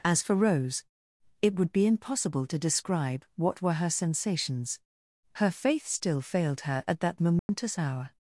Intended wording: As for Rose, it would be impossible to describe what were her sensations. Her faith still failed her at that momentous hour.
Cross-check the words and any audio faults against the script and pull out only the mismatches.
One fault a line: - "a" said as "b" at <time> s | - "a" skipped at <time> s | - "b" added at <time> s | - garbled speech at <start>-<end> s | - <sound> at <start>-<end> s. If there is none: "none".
- dropout at 7.4-7.5 s